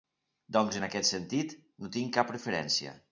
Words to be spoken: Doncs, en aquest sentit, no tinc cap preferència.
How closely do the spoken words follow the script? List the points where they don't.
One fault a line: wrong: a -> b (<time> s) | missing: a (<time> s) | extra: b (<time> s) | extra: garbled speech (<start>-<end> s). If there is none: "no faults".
no faults